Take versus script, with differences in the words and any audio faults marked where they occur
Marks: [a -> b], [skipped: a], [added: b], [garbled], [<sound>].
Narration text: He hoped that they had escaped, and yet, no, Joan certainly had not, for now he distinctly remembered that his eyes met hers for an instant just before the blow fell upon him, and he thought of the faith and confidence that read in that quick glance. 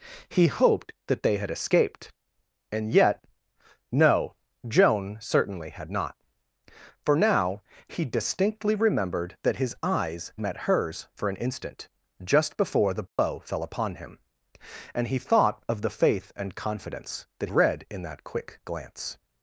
He hoped that they had escaped, and yet, no, Joan certainly had not, for now he distinctly remembered that his eyes met hers for an instant just before the blow [dropout] fell upon him, and he thought of the faith and confidence that read in that quick glance.